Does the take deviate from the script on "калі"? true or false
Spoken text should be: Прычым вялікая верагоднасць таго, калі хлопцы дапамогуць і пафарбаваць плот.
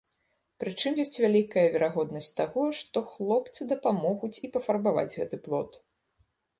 true